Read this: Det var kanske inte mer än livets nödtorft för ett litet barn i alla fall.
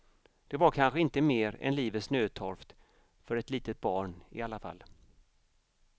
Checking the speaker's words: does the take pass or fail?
pass